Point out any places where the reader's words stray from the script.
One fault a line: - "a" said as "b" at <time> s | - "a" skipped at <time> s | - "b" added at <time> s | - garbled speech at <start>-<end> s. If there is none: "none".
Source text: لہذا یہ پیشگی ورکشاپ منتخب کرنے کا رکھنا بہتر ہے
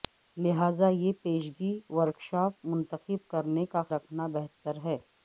none